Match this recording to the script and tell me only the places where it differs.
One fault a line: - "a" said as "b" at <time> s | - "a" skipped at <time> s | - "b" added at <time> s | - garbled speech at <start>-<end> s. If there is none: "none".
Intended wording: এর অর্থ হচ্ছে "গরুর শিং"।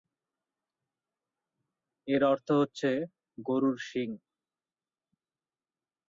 none